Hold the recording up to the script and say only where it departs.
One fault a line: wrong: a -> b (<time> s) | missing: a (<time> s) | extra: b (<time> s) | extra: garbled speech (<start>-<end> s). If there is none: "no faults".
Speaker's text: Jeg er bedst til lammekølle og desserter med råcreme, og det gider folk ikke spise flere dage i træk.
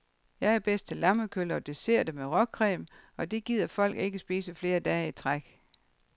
no faults